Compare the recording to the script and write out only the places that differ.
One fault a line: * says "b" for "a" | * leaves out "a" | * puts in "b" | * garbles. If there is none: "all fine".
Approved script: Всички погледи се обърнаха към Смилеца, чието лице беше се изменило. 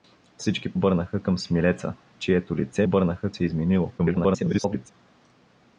* leaves out "погледи се"
* says "обърнаха" for "беше"
* garbles